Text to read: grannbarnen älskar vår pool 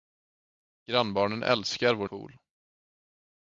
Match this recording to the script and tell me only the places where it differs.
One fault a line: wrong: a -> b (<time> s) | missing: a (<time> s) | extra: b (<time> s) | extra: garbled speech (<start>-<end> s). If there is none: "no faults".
no faults